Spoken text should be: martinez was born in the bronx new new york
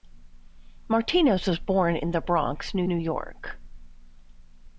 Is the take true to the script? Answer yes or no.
yes